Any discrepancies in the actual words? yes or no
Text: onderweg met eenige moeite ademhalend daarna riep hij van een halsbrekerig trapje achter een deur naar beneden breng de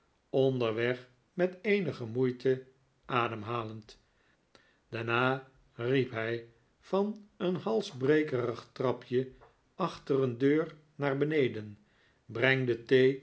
no